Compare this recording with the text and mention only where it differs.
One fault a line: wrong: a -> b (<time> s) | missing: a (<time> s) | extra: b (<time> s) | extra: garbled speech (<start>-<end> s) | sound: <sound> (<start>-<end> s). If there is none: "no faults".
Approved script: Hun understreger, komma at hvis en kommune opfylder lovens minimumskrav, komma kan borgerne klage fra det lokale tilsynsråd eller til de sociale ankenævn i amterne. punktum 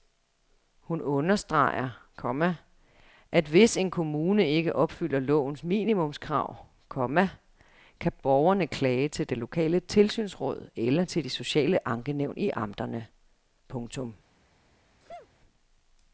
extra: ikke (4.5 s)
wrong: fra -> til (9.1 s)
sound: sneeze (15.0-15.3 s)